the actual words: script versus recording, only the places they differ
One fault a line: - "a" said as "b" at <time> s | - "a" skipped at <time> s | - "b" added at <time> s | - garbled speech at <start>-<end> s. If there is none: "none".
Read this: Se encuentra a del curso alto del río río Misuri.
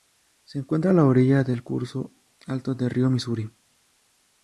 - "la orilla" added at 0.9 s
- "río" skipped at 3.1 s